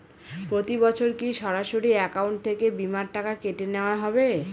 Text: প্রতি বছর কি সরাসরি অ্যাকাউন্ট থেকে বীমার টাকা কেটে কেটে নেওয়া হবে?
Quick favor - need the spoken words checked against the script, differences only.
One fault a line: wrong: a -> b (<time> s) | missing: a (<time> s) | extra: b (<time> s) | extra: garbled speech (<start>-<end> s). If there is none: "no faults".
missing: কেটে (3.6 s)